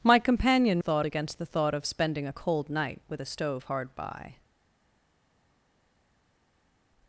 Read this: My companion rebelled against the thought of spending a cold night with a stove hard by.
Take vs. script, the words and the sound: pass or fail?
fail